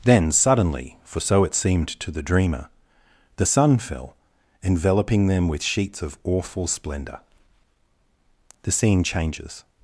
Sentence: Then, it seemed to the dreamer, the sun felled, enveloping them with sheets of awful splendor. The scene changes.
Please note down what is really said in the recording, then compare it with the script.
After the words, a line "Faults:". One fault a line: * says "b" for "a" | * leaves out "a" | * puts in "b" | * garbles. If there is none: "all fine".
Then, suddenly, for so it seemed to the dreamer, the sun fell, enveloping them with sheets of awful splendor. The scene changes.
Faults:
* puts in "suddenly for so"
* says "fell" for "felled"